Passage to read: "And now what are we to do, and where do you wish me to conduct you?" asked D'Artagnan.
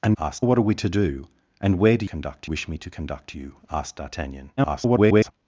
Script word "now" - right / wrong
wrong